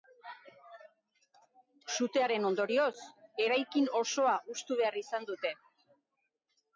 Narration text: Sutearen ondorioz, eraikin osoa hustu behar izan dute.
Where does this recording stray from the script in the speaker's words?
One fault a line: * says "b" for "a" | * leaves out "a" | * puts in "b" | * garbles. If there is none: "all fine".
all fine